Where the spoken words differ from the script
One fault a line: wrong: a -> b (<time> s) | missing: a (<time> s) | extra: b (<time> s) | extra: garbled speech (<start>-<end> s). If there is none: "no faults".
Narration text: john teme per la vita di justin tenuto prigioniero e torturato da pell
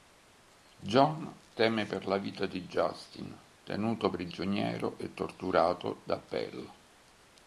no faults